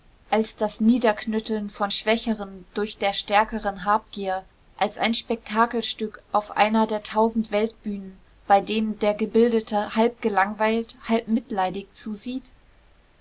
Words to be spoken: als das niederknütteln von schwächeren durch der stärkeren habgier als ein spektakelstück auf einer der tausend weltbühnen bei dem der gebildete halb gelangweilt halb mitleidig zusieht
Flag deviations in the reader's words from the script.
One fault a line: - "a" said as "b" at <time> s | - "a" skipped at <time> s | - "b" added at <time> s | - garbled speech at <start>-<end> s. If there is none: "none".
none